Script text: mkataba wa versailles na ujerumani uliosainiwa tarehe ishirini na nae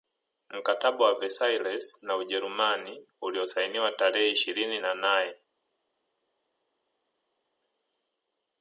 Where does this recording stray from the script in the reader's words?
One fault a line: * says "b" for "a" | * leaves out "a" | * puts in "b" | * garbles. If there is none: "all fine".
all fine